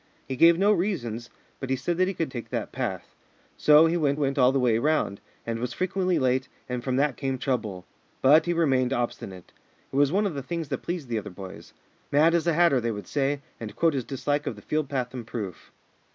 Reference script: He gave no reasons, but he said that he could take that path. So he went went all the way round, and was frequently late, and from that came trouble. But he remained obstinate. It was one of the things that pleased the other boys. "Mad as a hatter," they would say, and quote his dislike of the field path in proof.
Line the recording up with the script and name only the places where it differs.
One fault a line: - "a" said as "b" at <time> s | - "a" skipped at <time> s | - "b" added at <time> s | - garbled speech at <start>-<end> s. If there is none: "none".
none